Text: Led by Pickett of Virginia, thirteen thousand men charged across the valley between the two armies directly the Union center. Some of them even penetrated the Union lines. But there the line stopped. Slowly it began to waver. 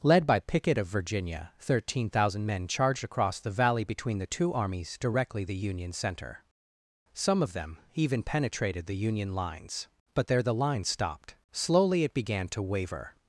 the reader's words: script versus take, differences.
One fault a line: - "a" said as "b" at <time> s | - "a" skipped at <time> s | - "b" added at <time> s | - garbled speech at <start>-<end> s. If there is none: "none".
none